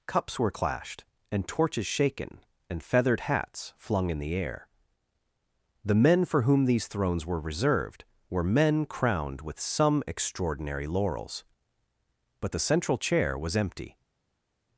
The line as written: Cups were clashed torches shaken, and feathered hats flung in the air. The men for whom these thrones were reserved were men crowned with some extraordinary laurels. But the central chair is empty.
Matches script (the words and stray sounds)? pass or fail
fail